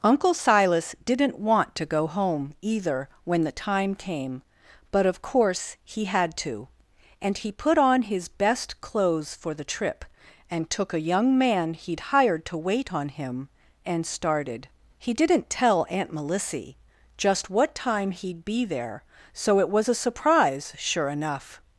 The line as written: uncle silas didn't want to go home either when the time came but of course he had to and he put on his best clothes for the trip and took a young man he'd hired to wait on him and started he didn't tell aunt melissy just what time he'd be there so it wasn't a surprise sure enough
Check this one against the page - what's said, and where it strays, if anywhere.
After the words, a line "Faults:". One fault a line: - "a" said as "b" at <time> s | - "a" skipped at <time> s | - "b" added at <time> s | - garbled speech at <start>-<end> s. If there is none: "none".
uncle silas didn't want to go home either when the time came but of course he had to and he put on his best clothes for the trip and took a young man he'd hired to wait on him and started he didn't tell aunt melissy just what time he'd be there so it was a surprise sure enough
Faults:
- "wasn't" said as "was" at 19.7 s